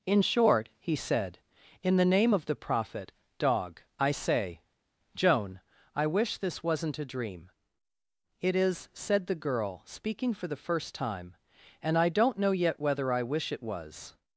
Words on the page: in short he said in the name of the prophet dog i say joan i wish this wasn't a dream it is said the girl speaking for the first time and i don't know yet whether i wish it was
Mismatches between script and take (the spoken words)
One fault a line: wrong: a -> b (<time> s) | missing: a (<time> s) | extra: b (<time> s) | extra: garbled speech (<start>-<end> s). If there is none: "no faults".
no faults